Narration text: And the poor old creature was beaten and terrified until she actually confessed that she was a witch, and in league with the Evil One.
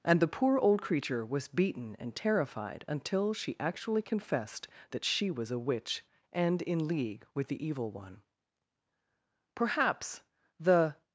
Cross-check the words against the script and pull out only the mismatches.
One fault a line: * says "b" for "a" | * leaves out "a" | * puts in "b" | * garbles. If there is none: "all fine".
* puts in "Perhaps the"